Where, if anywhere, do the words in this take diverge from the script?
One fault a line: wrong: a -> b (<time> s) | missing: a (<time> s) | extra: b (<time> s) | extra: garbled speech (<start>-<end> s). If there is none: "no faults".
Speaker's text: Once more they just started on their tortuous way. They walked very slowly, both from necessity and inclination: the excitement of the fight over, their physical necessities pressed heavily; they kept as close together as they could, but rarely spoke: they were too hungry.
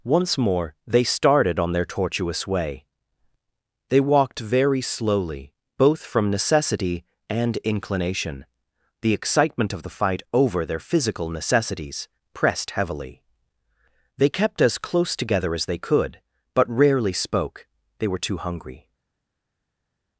missing: just (1.0 s)